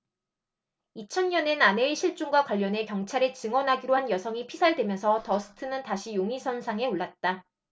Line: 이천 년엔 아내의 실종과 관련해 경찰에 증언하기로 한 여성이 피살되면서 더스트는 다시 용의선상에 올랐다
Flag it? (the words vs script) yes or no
no